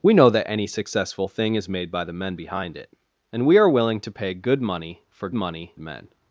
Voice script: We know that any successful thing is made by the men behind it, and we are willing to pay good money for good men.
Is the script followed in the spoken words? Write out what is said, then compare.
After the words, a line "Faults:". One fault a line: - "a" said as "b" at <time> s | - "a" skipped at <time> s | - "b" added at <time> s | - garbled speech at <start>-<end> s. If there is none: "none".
We know that any successful thing is made by the men behind it, and we are willing to pay good money for money men.
Faults:
- "good" said as "money" at 5.3 s